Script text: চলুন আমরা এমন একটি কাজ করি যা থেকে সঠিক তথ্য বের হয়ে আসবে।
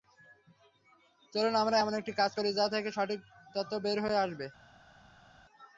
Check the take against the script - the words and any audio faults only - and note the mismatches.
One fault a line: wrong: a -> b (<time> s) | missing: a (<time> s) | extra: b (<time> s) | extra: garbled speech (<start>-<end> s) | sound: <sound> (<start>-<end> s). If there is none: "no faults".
no faults